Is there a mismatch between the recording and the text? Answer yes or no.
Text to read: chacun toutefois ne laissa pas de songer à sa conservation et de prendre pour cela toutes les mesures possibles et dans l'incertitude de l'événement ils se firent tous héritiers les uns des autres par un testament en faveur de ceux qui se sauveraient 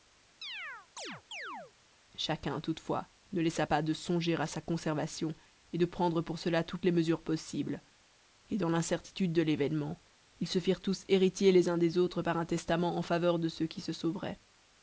no